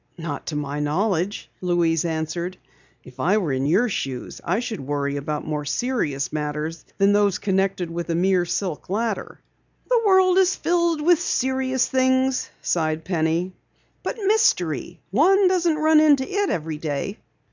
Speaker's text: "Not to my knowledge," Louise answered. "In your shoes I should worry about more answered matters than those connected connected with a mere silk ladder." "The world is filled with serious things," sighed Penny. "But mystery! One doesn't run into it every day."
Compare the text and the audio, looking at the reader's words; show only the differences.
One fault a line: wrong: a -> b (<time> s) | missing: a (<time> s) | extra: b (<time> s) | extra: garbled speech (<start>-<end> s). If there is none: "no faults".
extra: If I were (3.0 s)
wrong: answered -> serious (5.6 s)
missing: connected (7.9 s)